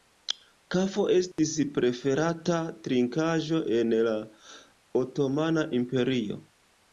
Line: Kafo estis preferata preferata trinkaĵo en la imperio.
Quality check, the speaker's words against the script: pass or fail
fail